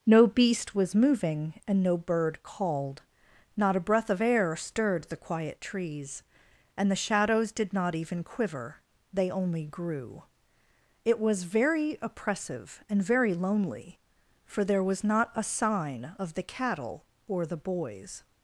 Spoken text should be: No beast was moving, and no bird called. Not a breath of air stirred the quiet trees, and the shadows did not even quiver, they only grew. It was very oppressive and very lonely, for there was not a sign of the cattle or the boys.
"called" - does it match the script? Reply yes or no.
yes